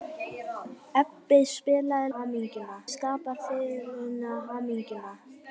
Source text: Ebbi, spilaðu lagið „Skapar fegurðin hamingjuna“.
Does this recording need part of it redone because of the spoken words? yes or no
yes